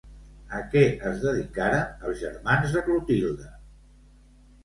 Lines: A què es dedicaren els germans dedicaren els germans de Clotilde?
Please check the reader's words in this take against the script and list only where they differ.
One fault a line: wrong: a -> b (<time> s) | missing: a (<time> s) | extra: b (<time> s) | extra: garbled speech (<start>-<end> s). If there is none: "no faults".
missing: dedicaren els germans (2.8 s)